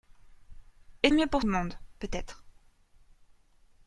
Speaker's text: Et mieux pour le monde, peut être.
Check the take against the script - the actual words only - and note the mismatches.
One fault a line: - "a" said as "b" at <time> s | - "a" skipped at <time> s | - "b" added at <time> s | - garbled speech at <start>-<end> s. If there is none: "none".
none